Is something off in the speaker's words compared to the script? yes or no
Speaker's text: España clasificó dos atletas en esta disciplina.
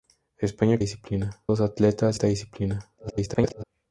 yes